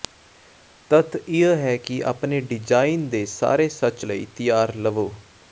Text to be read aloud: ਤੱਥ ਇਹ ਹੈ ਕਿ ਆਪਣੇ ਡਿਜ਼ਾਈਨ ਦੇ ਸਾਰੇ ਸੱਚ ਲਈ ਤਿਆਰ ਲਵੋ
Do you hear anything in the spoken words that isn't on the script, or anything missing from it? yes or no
no